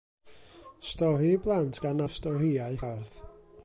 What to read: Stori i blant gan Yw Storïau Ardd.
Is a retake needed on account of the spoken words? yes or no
no